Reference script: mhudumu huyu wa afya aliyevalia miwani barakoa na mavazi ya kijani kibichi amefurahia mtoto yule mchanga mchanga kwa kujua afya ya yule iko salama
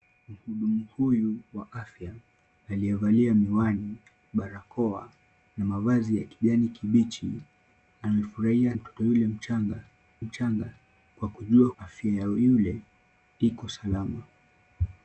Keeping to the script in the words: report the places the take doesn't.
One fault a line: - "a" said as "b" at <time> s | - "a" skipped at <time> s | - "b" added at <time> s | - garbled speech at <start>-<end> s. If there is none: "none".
none